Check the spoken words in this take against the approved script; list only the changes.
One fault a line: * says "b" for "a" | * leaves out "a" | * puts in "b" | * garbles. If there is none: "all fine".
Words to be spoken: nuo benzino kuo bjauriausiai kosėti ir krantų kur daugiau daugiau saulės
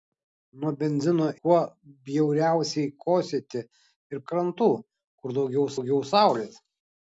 all fine